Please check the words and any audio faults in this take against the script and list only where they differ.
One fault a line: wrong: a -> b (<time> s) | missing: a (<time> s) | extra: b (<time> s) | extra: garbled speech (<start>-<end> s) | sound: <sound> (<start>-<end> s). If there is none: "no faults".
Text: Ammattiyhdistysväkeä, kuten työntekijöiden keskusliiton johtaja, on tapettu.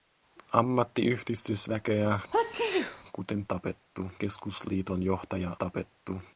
sound: sneeze (2.3-3.0 s)
wrong: työntekijöiden -> tapettu (3.5 s)
missing: on (5.6 s)